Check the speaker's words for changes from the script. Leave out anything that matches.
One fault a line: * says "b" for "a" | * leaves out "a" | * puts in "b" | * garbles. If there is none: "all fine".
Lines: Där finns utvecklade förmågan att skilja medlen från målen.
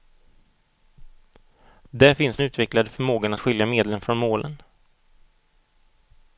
all fine